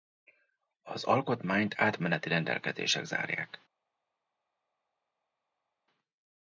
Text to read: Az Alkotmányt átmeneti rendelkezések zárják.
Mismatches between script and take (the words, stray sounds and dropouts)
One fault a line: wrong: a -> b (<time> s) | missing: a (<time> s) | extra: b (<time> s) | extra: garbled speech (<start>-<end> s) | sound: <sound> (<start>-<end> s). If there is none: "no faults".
no faults